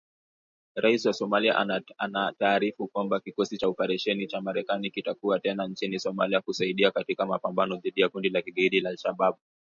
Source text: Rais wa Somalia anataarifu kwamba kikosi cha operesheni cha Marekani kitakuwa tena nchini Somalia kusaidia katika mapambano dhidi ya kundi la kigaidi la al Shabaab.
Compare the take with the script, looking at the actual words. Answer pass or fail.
pass